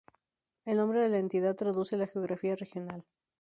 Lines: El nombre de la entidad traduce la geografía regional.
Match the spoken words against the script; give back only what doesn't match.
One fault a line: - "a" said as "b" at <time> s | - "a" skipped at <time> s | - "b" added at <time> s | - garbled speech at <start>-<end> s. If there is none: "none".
none